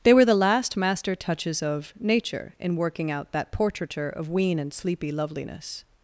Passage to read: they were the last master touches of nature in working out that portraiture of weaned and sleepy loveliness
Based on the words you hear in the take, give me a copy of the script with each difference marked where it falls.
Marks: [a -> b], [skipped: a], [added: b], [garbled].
they were the last master touches of nature in working out that portraiture of [weaned -> wean] and sleepy loveliness